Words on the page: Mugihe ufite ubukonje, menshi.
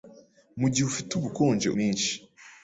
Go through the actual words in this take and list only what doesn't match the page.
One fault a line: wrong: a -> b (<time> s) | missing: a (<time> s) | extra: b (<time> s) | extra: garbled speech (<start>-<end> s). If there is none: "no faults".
no faults